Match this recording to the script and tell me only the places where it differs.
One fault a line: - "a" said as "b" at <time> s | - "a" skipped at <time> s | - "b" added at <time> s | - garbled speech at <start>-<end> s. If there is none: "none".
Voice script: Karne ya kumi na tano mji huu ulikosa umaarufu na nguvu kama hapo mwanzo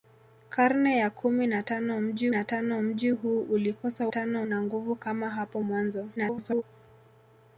- "na tano mji" added at 2.3 s
- "umaarufu" said as "tano" at 4.1 s
- garbled speech at 6.2-6.6 s